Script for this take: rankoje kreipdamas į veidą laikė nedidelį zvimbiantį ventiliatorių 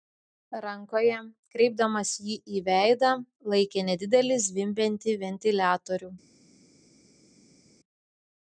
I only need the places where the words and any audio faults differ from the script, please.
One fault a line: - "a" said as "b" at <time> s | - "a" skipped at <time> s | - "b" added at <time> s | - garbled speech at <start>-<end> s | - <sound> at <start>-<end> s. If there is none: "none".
- "jį" added at 2.3 s